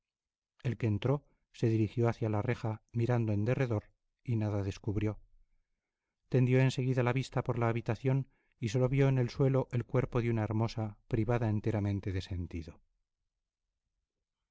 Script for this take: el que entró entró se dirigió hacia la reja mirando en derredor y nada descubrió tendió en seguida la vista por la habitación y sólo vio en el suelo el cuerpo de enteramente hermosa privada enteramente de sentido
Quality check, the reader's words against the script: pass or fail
fail